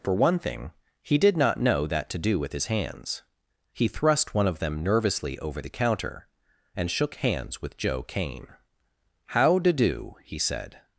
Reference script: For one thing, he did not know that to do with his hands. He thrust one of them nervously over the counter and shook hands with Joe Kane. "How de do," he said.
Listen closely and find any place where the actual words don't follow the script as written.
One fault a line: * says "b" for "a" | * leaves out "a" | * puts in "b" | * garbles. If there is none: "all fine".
all fine